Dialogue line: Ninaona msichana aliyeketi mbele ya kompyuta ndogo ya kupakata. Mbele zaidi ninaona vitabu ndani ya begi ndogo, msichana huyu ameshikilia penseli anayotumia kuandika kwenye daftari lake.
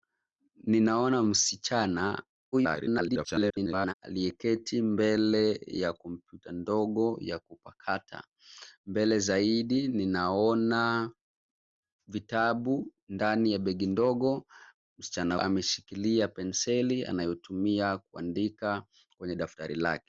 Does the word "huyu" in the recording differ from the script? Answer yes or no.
yes